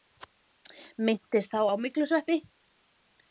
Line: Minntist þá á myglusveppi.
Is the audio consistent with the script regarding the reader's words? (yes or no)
yes